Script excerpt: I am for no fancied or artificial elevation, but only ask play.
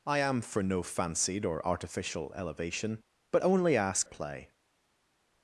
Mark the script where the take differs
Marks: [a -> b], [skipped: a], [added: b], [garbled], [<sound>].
I am for no fancied or artificial elevation, but only ask play.